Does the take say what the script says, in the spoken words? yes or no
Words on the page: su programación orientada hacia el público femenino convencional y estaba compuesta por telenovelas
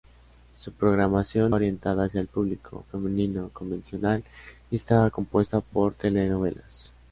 yes